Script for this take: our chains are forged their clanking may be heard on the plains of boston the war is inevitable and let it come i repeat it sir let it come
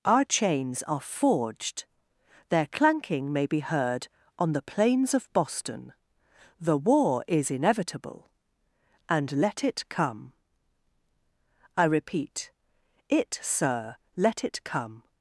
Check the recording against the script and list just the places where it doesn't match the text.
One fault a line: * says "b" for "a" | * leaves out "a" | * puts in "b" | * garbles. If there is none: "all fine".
all fine